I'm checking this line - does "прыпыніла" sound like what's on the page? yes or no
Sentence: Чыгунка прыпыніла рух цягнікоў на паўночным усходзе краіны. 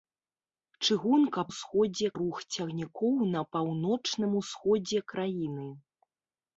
no